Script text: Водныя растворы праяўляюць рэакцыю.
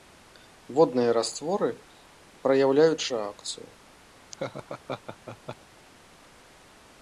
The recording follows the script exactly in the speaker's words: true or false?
true